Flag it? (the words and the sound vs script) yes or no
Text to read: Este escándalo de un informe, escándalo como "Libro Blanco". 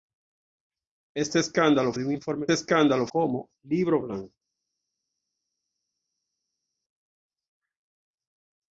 no